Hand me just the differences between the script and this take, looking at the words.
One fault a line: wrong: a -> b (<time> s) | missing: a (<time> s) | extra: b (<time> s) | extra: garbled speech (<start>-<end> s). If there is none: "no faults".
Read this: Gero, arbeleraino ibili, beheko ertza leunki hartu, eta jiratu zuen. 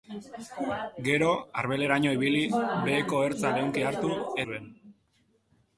missing: eta jiratu (4.1 s)